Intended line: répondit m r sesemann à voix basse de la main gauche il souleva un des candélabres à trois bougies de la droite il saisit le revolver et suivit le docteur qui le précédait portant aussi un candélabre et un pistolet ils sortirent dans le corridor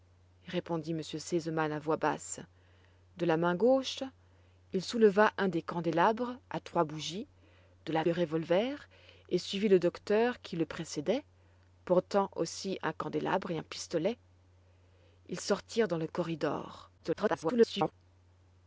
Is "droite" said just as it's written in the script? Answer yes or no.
no